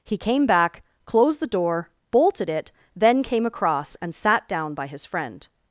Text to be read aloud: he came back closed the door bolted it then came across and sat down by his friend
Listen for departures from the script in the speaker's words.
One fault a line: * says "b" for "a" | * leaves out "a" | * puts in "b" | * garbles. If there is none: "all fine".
all fine